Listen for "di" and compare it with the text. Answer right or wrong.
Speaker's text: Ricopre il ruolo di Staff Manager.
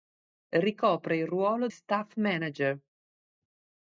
wrong